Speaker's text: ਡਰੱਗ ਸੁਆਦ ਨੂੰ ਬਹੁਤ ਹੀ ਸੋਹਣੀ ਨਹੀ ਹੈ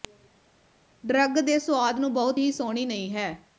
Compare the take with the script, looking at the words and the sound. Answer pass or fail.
fail